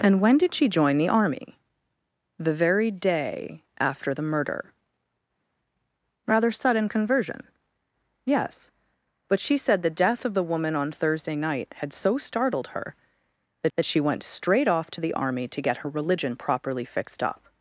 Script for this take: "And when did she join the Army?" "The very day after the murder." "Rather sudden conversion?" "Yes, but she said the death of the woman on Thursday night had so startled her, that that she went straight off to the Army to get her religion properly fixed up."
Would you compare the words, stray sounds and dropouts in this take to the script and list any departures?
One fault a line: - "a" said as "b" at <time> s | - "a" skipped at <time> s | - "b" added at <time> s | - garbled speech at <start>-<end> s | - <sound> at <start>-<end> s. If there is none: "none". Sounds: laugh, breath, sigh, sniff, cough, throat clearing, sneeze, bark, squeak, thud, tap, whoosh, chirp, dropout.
none